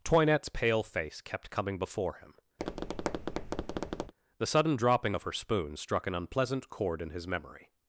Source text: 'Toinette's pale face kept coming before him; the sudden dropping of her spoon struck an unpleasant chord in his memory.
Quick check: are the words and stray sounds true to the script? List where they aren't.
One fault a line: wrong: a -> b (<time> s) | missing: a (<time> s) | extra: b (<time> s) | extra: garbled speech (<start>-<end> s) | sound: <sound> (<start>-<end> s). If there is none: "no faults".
sound: tap (2.6-4.1 s)